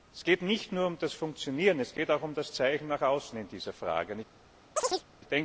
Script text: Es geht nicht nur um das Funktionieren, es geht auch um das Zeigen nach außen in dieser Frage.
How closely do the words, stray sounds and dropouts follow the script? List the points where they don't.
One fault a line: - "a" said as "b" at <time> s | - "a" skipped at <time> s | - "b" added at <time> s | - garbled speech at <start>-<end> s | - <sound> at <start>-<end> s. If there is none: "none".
- chirp at 4.8-5.0 s